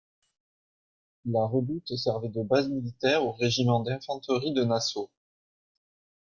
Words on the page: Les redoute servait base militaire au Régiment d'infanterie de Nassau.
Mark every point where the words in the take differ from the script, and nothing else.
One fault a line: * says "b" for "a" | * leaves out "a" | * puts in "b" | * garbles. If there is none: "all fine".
* says "La" for "Les"
* puts in "de"